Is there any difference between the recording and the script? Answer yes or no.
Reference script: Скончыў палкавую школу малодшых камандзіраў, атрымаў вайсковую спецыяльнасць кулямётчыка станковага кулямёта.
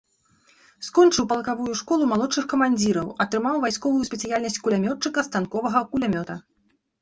no